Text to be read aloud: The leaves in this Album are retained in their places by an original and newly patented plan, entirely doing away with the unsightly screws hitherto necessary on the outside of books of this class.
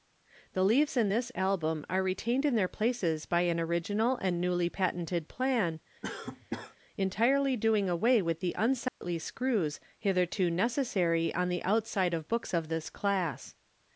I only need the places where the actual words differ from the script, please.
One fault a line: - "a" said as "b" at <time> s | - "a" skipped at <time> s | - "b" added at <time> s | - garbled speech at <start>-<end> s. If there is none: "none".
none